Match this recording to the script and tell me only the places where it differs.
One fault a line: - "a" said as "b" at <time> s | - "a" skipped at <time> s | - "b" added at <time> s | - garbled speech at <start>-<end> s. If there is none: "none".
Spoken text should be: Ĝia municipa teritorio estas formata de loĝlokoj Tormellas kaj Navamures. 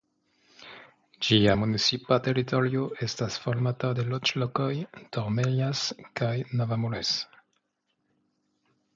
none